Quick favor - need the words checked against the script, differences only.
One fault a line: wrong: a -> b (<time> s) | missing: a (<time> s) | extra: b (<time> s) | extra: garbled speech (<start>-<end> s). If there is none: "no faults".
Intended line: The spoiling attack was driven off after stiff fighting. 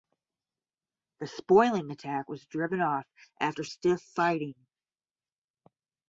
no faults